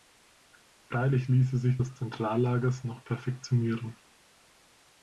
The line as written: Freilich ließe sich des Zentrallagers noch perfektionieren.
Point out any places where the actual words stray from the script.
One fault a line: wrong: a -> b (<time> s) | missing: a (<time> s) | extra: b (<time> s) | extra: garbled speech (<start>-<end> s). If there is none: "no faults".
no faults